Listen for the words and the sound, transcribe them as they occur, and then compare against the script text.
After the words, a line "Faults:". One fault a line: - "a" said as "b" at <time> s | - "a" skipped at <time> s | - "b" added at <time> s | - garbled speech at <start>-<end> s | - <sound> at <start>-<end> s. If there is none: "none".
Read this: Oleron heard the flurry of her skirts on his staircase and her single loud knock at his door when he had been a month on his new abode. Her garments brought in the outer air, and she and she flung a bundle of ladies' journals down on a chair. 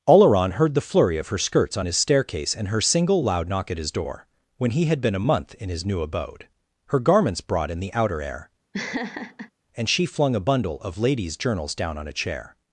Oleron heard the flurry of her skirts on his staircase and her single loud knock at his door when he had been a month in his new abode. Her garments brought in the outer air, and she flung a bundle of ladies' journals down on a chair.
Faults:
- "on" said as "in" at 5.6 s
- laugh at 8.7-9.5 s
- "and she" skipped at 10.1 s